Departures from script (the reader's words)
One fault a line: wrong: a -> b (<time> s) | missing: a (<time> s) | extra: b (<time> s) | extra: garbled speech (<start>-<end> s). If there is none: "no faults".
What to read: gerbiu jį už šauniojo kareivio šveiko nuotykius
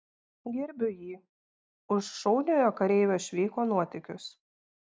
no faults